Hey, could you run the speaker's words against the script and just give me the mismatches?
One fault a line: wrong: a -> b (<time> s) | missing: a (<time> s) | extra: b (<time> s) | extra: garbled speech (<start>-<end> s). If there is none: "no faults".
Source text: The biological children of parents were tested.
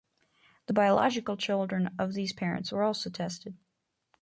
extra: these (2.1 s)
extra: also (2.8 s)